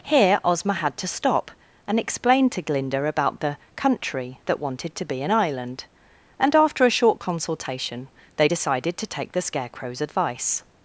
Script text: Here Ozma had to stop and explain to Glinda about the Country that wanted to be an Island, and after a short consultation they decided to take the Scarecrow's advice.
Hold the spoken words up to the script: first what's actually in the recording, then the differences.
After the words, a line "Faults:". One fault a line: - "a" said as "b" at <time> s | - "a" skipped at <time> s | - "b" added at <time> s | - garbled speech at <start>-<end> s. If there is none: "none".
Here Ozma had to stop and explain to Glinda about the Country that wanted to be an Island, and after a short consultation they decided to take the Scarecrow's advice.
Faults:
none